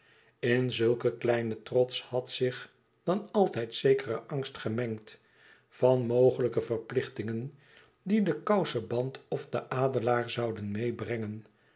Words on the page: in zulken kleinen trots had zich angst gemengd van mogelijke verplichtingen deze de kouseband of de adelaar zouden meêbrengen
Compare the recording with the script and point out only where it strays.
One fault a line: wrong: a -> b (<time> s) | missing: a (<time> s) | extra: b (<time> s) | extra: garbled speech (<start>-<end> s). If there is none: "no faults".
extra: dan altijd zekere (3.0 s)
wrong: deze -> die (8.0 s)